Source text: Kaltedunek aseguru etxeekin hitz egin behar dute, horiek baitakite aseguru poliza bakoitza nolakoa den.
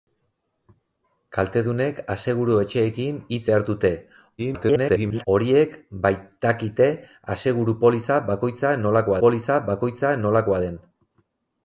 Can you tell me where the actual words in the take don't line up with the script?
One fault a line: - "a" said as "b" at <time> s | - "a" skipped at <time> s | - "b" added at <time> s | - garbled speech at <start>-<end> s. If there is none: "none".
- "egin" skipped at 3.4 s
- garbled speech at 4.4-5.3 s
- "poliza bakoitza nolakoa" added at 9.2 s